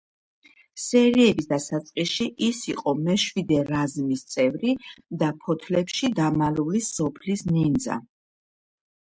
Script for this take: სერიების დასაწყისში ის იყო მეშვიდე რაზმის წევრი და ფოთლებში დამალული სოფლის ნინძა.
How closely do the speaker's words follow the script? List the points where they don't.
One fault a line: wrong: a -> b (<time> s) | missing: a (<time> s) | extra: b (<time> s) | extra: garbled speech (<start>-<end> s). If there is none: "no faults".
no faults